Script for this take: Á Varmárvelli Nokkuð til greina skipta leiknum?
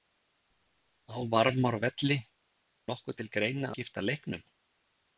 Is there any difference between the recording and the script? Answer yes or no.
no